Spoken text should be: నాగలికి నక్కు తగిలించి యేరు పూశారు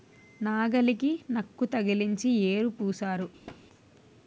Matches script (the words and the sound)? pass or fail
fail